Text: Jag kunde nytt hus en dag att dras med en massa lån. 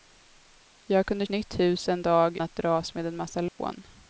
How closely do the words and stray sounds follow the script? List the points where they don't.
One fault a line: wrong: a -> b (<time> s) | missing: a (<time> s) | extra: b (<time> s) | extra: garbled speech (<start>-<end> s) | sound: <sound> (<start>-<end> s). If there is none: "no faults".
sound: dropout (3.5-3.6 s)